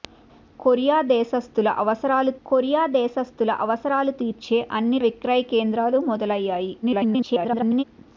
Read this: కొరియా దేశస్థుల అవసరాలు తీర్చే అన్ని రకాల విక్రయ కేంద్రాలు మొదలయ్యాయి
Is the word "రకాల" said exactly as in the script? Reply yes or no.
no